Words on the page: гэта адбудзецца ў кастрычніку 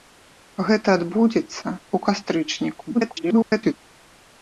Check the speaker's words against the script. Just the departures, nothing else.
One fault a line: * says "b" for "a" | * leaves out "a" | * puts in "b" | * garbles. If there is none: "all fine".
* garbles